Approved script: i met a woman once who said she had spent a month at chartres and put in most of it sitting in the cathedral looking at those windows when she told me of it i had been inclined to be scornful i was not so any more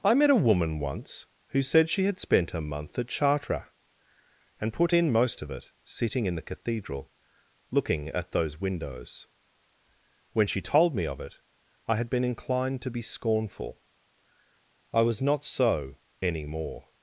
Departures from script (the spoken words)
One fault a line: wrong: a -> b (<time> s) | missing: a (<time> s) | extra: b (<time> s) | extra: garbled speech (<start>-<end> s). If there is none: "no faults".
no faults